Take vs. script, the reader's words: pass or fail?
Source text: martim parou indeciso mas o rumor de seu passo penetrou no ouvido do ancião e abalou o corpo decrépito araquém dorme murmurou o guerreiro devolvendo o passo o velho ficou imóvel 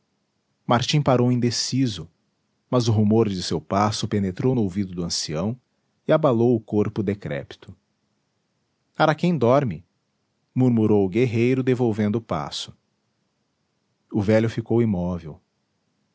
pass